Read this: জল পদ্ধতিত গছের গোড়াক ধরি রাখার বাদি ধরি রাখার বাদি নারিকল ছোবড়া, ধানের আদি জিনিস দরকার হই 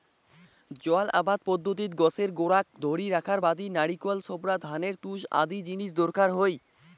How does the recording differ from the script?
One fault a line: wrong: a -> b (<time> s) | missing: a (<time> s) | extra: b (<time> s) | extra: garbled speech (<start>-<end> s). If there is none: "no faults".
extra: আবাদ (1.1 s)
missing: ধরি রাখার বাদি (3.7 s)
extra: তুষ (5.0 s)